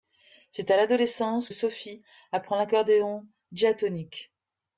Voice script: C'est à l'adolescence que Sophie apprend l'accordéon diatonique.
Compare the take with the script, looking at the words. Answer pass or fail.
fail